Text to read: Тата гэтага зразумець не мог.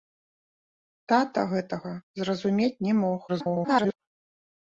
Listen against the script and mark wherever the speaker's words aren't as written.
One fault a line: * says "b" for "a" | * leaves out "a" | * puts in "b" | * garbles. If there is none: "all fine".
* garbles